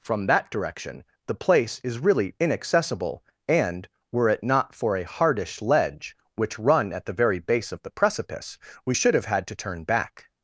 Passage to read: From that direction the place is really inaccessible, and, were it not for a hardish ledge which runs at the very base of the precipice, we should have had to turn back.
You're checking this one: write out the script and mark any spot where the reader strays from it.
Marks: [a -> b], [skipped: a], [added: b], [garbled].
From that direction the place is really inaccessible, and, were it not for a hardish ledge which [runs -> run] at the very base of the precipice, we should have had to turn back.